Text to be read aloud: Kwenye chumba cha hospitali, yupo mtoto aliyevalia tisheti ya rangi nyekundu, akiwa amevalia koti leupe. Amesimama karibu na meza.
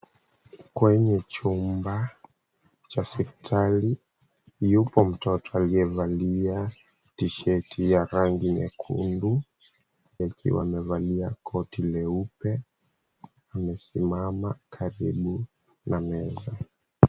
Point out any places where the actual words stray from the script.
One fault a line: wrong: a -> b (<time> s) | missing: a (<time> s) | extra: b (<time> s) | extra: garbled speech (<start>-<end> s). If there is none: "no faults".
no faults